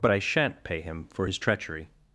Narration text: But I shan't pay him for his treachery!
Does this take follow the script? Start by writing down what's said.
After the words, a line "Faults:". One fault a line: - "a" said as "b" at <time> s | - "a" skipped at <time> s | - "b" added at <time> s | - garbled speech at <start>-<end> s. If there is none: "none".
But I shan't pay him for his treachery!
Faults:
none